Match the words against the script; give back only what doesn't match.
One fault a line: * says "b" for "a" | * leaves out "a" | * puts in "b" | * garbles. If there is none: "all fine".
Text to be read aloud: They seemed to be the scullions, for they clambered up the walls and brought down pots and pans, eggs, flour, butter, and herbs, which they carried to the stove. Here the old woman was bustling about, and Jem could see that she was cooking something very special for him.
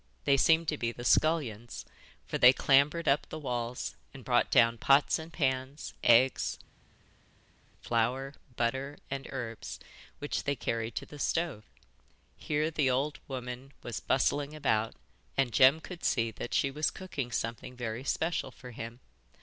all fine